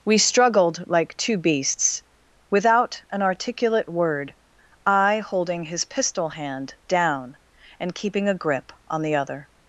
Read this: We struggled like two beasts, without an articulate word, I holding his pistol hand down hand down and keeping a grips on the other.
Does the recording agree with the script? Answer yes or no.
no